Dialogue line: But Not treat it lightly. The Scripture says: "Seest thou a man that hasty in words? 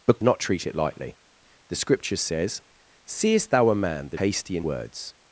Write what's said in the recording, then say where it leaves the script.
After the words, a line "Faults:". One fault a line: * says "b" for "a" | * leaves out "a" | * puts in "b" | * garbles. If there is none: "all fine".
But Not treat it lightly. The Scripture says: "Seest thou a man that hasty in words?
Faults:
all fine